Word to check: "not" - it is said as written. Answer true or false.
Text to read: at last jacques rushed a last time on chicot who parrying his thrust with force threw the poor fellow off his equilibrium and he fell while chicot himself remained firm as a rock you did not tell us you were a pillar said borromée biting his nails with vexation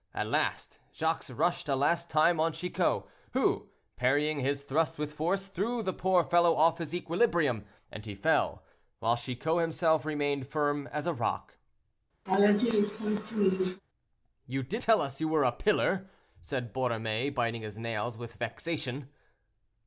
false